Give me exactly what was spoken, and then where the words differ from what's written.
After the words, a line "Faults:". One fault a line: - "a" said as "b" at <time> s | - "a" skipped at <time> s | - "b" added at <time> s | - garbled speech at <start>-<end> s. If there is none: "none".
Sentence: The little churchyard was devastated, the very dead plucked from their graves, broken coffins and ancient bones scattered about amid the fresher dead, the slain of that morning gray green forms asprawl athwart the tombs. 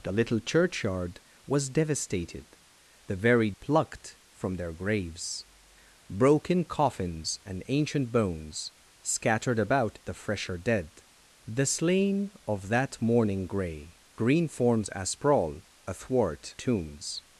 The little churchyard was devastated, the very plucked from their graves, broken coffins and ancient bones scattered about the fresher dead, the slain of that morning gray green forms asprawl athwart tombs.
Faults:
- "dead" skipped at 3.5 s
- "amid" skipped at 10.0 s
- "the" skipped at 16.6 s